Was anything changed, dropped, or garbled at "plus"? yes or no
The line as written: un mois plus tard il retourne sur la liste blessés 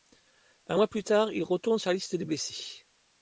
no